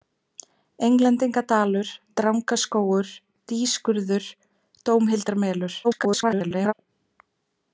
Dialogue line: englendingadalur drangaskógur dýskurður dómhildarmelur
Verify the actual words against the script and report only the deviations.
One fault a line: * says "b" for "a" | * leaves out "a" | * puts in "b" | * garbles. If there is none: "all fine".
* garbles